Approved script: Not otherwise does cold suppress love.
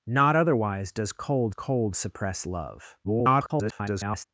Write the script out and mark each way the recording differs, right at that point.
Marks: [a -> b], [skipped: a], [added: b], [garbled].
Not otherwise does cold [added: cold] suppress love. [garbled]